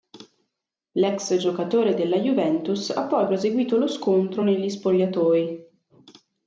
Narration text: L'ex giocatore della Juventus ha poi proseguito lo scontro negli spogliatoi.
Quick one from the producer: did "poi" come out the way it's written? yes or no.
yes